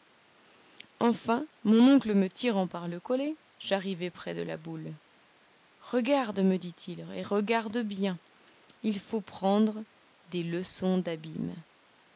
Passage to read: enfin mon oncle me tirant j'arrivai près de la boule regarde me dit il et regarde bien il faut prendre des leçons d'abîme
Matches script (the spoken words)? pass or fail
fail